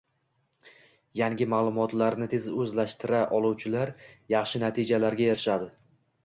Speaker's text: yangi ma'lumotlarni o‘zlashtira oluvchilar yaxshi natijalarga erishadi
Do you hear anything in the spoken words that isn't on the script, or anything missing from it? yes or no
yes